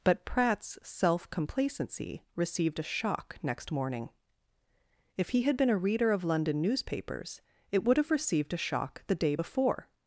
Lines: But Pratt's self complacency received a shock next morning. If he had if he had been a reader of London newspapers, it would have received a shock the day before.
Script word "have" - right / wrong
right